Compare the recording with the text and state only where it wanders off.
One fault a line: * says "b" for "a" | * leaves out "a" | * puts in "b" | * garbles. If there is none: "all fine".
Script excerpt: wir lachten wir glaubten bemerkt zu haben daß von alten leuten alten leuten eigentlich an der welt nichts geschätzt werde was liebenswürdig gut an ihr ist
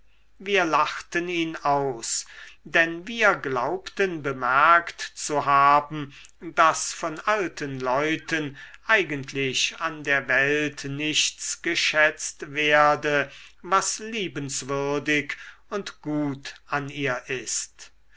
* puts in "ihn aus denn"
* leaves out "alten leuten"
* puts in "und"